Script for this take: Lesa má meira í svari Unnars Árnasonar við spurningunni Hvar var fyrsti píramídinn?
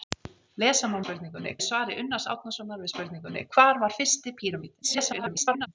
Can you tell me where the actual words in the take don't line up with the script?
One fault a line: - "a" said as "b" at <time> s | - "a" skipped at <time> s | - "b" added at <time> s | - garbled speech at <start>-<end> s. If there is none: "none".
- "meira" said as "spurningunni" at 1.0 s
- garbled speech at 4.8-5.7 s